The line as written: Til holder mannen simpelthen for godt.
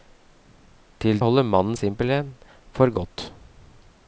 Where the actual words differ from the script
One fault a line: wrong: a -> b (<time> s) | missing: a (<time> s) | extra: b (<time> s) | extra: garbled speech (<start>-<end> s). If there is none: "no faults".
no faults